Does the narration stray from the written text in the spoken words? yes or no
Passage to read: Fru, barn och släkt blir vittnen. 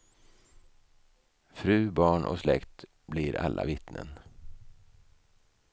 yes